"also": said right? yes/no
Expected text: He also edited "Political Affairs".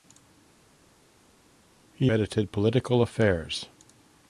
no